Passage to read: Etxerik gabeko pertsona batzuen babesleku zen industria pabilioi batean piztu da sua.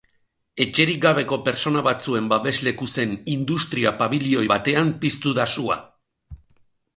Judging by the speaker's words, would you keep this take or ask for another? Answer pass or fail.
pass